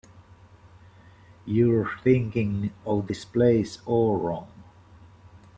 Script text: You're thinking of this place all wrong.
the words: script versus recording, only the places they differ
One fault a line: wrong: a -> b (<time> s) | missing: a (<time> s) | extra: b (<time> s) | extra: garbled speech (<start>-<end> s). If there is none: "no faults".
no faults